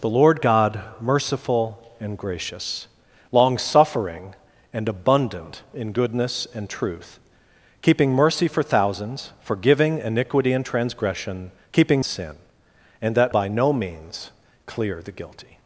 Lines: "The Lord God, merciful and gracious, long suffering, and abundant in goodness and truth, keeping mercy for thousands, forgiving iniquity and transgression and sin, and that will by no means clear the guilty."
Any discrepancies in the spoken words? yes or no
yes